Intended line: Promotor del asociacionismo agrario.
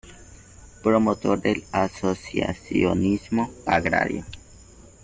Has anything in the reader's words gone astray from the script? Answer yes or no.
no